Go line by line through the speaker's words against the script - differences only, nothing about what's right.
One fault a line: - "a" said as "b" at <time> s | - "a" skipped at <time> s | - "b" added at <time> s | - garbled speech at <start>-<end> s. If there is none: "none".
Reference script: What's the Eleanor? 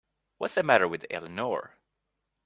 - "matter with" added at 0.6 s